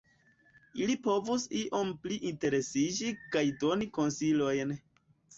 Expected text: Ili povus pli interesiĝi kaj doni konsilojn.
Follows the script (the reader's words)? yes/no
no